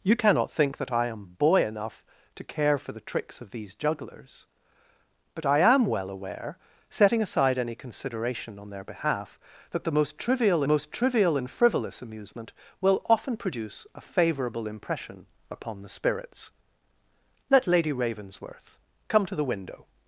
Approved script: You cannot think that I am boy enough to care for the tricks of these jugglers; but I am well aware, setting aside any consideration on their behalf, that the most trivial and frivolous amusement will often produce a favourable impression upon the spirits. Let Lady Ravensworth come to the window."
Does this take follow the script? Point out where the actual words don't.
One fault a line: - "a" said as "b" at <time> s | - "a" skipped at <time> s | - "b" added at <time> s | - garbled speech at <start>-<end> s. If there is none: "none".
- "most trivial" added at 10.7 s